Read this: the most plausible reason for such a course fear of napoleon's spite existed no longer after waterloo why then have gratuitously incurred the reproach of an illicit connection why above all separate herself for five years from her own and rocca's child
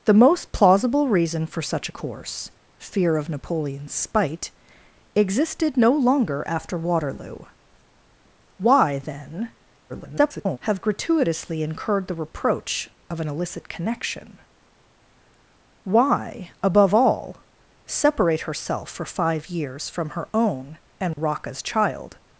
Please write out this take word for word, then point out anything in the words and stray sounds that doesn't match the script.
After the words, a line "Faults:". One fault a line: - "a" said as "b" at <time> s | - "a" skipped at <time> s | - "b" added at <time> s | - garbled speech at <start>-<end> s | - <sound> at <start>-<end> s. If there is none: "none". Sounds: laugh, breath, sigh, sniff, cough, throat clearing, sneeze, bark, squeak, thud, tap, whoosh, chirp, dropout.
the most plausible reason for such a course fear of napoleon's spite existed no longer after waterloo why then [garbled] have gratuitously incurred the reproach of an illicit connection why above all separate herself for five years from her own and rocca's child
Faults:
- garbled speech at 9.9-10.6 s
- dropout at 21.1-21.2 s